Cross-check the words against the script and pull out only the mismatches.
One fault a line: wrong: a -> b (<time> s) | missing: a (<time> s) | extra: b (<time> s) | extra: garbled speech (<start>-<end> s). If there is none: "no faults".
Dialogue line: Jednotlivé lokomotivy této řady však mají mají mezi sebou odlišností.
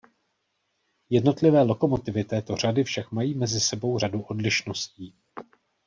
missing: mají (3.4 s)
extra: řadu (4.0 s)